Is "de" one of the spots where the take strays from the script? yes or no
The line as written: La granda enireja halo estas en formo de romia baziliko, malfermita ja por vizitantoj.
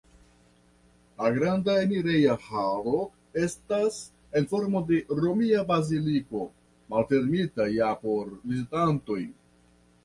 no